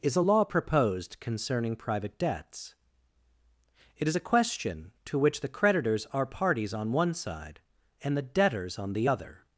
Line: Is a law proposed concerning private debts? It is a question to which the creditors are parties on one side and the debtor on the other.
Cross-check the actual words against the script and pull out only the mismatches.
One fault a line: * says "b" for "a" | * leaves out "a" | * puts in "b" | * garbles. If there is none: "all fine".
* says "debtors" for "debtor"